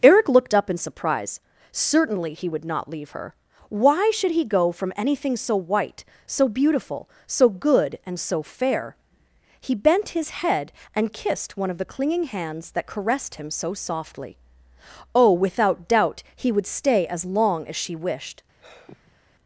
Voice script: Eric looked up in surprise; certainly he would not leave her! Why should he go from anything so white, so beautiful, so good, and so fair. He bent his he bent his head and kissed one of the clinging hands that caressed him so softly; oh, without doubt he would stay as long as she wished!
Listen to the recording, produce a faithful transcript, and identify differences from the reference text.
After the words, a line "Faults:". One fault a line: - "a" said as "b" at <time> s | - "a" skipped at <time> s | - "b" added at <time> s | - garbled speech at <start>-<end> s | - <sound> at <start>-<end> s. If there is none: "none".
Eric looked up in surprise; certainly he would not leave her! Why should he go from anything so white, so beautiful, so good, and so fair. He bent his head and kissed one of the clinging hands that caressed him so softly; oh, without doubt he would stay as long as she wished!
Faults:
- "he bent his" skipped at 10.3 s
- sigh at 18.6-19.2 s